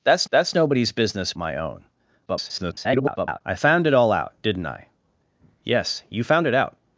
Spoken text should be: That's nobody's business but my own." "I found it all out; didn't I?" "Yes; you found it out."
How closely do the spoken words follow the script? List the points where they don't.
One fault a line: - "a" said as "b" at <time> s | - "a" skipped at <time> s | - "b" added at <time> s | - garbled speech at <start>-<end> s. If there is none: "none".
- "that's" added at 0.3 s
- "but" skipped at 1.3 s
- garbled speech at 2.3-3.4 s